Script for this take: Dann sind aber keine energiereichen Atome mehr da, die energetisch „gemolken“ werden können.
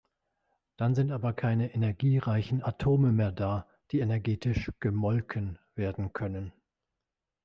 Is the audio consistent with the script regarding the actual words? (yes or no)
yes